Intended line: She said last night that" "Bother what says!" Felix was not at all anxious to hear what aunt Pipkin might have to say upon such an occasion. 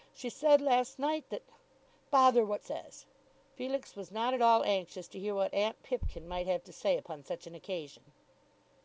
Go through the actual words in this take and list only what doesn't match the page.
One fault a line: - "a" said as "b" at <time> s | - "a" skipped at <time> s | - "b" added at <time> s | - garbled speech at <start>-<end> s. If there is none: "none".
none